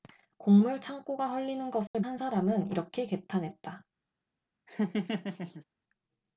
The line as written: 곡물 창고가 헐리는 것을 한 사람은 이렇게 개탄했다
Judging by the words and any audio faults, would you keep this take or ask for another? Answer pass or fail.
fail